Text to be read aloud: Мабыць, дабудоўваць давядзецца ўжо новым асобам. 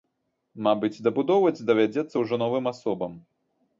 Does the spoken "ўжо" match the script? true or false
true